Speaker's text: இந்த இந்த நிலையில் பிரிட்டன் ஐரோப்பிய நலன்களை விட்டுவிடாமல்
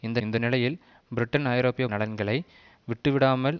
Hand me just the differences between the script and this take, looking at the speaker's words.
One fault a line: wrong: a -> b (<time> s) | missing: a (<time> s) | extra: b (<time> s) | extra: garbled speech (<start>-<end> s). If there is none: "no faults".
no faults